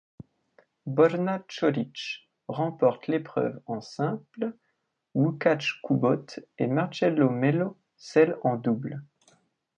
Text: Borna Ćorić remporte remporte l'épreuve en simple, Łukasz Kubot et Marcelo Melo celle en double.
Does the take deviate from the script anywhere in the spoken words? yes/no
yes